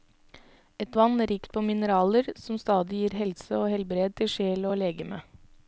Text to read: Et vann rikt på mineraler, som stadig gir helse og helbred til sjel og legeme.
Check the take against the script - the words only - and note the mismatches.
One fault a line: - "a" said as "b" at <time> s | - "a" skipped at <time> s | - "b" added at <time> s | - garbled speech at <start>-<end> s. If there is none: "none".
none